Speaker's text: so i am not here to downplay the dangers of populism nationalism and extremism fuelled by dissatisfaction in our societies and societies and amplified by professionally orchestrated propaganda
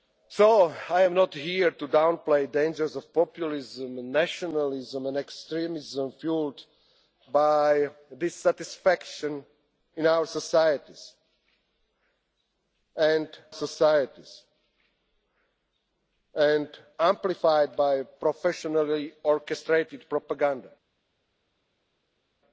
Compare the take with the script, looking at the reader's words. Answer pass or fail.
pass